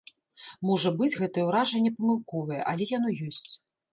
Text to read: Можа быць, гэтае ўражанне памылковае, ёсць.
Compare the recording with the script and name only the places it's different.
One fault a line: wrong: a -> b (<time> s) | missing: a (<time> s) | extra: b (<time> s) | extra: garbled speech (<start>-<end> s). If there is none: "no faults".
extra: але яно (2.7 s)